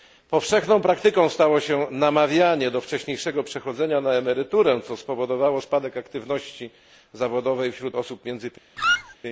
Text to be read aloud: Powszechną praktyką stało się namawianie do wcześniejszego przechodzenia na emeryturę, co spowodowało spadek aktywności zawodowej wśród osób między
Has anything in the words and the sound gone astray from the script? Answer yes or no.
yes